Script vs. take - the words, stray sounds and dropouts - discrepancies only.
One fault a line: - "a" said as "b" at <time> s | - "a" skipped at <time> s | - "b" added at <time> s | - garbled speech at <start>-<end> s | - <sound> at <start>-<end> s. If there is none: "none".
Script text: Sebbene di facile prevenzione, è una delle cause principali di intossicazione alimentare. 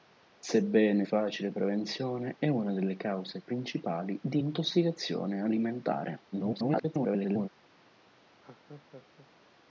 - "di" skipped at 1.1 s
- garbled speech at 6.3-7.5 s
- laugh at 8.4-9.3 s